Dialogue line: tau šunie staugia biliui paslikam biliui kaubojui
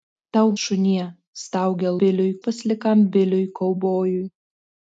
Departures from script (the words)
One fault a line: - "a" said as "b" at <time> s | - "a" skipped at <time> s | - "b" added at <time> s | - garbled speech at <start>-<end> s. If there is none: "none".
none